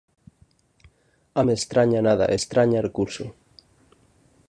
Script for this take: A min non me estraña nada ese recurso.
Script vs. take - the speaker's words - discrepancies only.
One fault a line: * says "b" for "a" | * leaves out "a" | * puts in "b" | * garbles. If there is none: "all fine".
* leaves out "min non"
* says "estraña" for "ese"